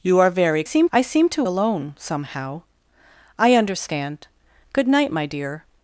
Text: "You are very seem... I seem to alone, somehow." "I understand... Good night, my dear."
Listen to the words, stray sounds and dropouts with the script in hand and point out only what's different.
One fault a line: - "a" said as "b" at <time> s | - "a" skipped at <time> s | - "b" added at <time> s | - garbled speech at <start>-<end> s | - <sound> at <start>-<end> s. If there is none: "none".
none